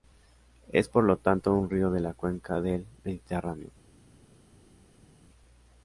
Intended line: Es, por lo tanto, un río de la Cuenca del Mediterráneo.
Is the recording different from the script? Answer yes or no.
no